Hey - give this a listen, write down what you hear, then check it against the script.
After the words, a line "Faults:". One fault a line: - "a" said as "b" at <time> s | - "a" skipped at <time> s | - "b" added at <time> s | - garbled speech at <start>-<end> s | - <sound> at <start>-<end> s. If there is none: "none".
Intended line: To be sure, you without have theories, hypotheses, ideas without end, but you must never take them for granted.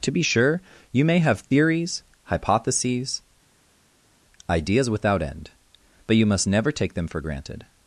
To be sure, you may have theories, hypotheses, ideas without end, but you must never take them for granted.
Faults:
- "without" said as "may" at 1.1 s